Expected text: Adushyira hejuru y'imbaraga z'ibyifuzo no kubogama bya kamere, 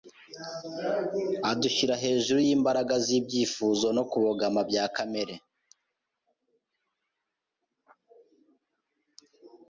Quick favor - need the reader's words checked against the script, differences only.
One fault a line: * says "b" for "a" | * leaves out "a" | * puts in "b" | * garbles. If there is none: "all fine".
all fine